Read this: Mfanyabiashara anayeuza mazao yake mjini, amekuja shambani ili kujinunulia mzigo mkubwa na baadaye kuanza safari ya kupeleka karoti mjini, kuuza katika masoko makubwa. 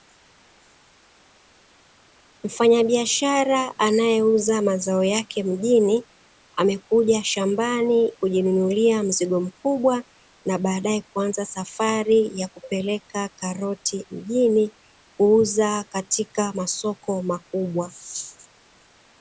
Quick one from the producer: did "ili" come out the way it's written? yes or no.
no